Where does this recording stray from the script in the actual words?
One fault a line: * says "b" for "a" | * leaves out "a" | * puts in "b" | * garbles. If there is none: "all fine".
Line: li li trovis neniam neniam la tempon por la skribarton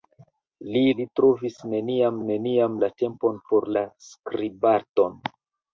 all fine